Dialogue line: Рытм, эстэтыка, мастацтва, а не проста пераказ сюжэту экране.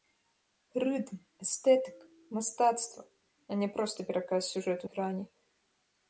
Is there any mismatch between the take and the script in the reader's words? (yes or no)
no